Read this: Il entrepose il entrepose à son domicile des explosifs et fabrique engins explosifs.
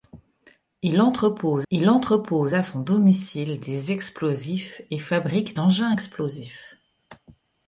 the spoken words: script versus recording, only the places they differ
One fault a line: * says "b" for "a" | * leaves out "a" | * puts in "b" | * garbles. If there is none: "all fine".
all fine